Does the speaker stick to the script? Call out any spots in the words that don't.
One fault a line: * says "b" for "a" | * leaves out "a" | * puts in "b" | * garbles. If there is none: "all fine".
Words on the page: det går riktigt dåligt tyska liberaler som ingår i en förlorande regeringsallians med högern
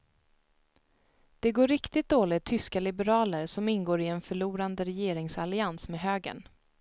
all fine